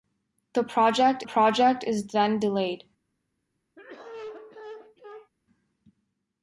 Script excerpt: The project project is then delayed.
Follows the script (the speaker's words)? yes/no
yes